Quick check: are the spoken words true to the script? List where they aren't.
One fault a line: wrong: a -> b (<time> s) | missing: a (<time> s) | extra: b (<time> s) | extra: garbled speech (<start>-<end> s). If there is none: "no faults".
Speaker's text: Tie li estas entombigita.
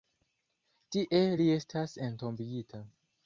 no faults